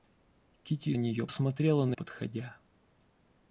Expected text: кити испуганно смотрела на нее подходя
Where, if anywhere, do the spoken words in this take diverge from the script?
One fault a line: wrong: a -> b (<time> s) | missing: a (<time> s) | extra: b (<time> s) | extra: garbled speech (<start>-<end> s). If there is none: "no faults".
wrong: испуганно -> нее (0.9 s)
missing: нее (1.9 s)